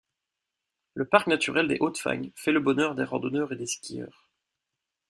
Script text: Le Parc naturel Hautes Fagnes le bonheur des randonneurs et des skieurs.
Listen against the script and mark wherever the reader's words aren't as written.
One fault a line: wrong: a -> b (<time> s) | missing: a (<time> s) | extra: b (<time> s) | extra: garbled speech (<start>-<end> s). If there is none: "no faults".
extra: des (1.7 s)
extra: fait (2.4 s)